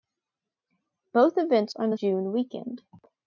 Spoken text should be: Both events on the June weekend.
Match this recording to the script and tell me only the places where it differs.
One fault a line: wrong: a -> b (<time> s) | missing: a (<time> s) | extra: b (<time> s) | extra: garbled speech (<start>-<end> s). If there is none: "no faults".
no faults